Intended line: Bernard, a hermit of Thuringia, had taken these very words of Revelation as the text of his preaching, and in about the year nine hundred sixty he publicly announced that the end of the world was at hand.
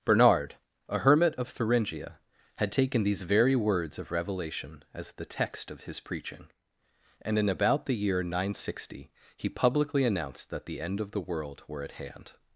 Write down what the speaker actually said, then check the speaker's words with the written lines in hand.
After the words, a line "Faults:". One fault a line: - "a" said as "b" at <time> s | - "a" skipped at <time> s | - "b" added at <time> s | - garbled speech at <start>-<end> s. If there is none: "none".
Bernard, a hermit of Thuringia, had taken these very words of Revelation as the text of his preaching, and in about the year nine hundred sixty he publicly announced that the end of the world were at hand.
Faults:
- "was" said as "were" at 11.7 s